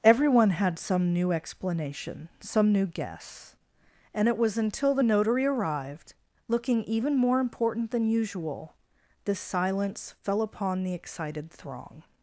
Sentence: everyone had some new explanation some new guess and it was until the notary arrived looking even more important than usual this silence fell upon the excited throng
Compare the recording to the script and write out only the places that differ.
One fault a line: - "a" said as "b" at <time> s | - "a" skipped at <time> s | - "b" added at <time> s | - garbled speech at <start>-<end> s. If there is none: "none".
none